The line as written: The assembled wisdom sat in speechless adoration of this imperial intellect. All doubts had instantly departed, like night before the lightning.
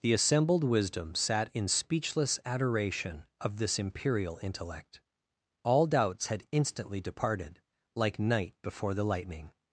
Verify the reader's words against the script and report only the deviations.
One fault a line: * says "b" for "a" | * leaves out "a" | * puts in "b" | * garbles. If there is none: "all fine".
all fine